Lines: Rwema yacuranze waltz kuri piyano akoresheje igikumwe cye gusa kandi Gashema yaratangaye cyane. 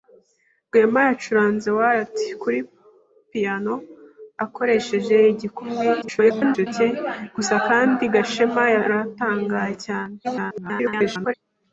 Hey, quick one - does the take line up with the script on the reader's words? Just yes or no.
no